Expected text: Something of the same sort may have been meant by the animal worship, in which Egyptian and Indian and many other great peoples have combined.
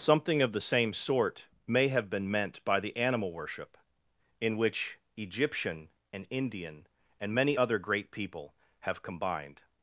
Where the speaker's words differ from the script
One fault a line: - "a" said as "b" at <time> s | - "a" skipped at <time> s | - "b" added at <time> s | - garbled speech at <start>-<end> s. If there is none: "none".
- "peoples" said as "people" at 8.1 s